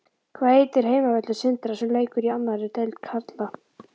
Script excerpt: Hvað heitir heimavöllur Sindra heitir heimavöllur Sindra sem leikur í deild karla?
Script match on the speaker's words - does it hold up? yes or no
no